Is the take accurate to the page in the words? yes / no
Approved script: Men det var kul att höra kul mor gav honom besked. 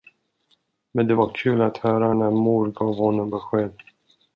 no